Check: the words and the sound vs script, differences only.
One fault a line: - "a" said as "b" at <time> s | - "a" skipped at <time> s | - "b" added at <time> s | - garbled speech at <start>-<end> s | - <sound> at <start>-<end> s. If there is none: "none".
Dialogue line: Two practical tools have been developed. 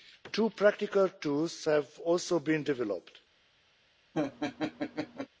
- "also" added at 2.0 s
- laugh at 4.1-5.3 s